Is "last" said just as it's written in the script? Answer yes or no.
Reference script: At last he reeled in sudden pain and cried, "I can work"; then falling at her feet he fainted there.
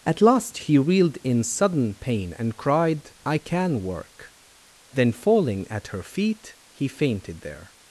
yes